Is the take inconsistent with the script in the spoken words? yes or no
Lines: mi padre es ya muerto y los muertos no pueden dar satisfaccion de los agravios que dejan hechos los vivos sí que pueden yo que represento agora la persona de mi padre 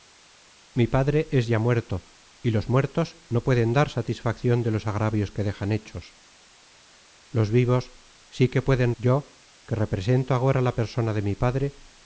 no